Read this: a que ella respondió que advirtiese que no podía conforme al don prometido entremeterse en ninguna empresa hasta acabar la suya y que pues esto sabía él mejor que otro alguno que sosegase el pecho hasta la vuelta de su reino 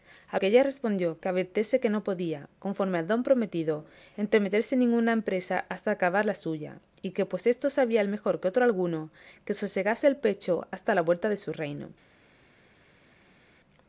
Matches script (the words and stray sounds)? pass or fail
pass